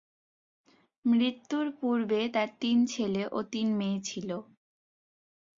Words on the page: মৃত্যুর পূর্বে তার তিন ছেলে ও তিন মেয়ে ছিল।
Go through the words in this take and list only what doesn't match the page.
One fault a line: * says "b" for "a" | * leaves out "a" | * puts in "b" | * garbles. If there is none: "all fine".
all fine